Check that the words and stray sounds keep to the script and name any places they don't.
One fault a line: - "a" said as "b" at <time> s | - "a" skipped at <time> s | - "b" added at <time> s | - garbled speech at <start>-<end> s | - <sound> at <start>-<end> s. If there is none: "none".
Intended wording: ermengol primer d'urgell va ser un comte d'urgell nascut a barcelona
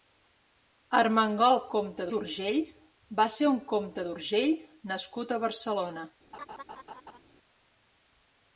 - "primer" said as "comte" at 1.8 s
- laugh at 6.3-7.2 s